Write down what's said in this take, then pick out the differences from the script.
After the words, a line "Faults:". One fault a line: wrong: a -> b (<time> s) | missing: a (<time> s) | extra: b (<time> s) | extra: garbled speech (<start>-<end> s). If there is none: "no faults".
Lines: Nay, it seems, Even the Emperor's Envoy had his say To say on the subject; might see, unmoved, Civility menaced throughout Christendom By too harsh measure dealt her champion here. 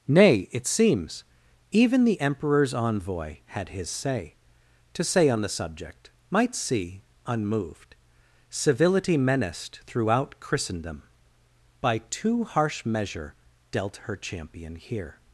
Nay, it seems, Even the Emperor's Envoy had his say To say on the subject; might see, unmoved, Civility menaced throughout Christendom By too harsh measure dealt her champion here.
Faults:
no faults